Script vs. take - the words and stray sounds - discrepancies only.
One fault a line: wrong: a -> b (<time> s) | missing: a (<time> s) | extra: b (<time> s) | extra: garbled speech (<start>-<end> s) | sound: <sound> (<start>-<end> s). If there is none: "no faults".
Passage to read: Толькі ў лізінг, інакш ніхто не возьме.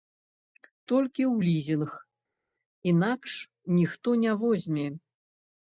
no faults